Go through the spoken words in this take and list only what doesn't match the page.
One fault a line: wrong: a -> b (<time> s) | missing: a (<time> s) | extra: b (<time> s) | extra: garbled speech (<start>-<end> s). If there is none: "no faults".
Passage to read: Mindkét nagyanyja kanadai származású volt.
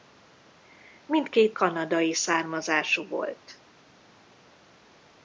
missing: nagyanyja (1.6 s)